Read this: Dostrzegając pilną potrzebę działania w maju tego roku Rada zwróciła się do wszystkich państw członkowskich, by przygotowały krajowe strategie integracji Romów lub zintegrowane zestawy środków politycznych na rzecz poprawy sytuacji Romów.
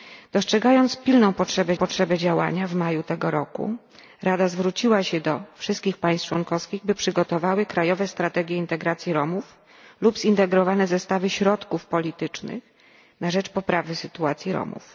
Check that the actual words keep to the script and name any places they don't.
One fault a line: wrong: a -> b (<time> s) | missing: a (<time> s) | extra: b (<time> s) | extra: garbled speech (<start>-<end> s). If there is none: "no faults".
extra: potrzebę (1.7 s)